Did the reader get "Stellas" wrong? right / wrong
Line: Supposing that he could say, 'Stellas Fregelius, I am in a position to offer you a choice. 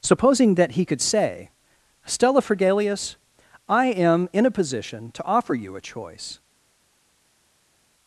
wrong